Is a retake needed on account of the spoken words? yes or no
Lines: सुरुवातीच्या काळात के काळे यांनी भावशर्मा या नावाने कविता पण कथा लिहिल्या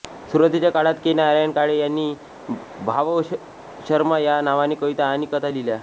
yes